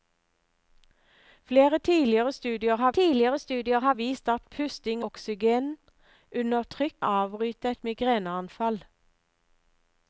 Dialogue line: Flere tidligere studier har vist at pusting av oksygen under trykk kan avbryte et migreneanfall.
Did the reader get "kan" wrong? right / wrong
wrong